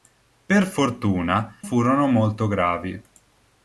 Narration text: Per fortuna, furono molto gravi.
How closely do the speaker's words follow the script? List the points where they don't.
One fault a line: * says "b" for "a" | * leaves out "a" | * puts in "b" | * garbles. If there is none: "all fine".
all fine